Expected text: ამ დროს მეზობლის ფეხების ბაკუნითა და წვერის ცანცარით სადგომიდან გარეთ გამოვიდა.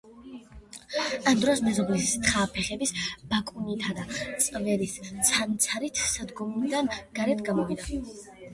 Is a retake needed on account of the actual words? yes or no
yes